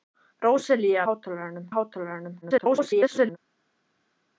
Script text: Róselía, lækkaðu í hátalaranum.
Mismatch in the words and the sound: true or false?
true